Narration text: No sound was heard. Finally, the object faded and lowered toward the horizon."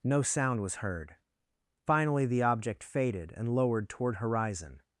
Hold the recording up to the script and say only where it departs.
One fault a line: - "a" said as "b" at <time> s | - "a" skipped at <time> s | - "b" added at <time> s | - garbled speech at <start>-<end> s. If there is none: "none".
- "the" skipped at 4.2 s